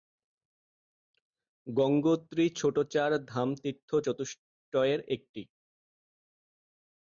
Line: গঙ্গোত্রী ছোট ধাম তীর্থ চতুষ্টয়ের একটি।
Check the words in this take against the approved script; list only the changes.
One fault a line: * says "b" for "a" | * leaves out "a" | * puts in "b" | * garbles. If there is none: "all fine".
* puts in "চার"